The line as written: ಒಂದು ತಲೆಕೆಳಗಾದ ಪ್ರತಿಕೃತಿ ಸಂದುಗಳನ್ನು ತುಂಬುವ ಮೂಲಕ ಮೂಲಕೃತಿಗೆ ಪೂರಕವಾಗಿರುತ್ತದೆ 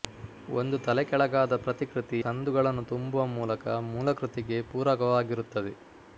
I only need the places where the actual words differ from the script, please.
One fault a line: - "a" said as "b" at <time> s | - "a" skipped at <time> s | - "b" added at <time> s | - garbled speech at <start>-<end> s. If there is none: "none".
none